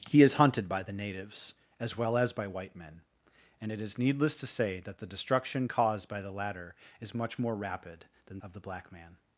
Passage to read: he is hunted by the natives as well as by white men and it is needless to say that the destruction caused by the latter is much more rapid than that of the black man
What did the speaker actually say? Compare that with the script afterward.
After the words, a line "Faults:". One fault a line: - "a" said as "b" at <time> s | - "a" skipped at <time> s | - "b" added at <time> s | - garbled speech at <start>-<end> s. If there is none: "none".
he is hunted by the natives as well as by white men and it is needless to say that the destruction caused by the latter is much more rapid than of the black man
Faults:
- "that" skipped at 8.4 s